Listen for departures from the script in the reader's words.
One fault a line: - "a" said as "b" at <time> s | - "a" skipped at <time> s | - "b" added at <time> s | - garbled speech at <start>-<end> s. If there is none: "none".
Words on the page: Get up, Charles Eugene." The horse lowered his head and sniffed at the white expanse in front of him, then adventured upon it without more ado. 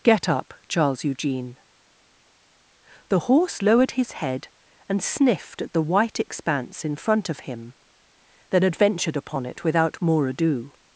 none